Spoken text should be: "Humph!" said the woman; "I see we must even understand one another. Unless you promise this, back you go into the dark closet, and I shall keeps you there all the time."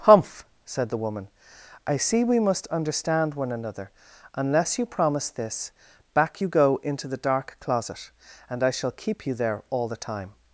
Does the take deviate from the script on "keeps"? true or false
true